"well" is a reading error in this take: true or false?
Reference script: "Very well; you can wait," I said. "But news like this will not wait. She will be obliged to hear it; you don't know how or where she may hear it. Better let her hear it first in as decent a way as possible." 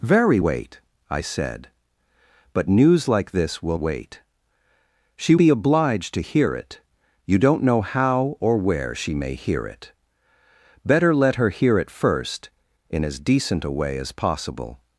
true